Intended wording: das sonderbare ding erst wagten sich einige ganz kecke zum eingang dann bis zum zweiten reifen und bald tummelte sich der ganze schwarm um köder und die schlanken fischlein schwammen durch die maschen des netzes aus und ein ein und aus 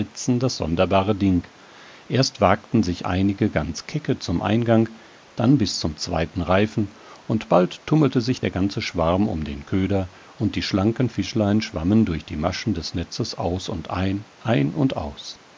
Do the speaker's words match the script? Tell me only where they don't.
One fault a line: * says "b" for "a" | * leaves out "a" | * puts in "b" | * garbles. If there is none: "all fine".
* puts in "den"